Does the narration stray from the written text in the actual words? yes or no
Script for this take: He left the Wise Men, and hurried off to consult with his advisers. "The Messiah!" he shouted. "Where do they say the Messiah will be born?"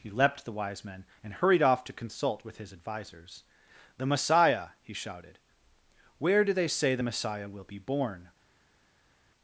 yes